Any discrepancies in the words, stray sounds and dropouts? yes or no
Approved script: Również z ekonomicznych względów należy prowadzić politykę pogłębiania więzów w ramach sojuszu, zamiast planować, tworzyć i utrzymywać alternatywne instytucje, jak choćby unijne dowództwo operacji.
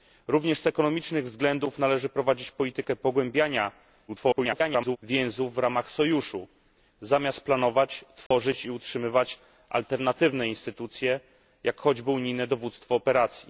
yes